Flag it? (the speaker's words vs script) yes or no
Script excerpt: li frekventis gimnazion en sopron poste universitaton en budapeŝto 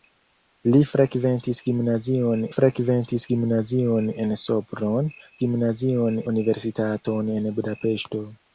yes